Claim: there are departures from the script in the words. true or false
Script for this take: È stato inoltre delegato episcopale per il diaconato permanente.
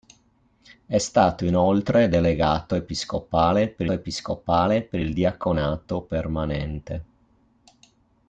true